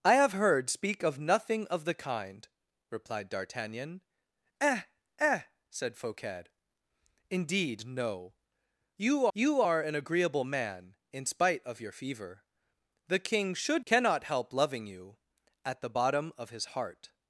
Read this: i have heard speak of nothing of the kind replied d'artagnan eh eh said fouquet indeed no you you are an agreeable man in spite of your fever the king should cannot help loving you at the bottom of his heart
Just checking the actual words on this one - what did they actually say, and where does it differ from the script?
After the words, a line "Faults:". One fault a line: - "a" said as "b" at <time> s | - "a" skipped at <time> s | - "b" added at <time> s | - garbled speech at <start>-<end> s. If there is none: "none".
i have heard speak of nothing of the kind replied d'artagnan eh eh said fouquet indeed no you you are an agreeable man in spite of your fever the king should cannot help loving you at the bottom of his heart
Faults:
none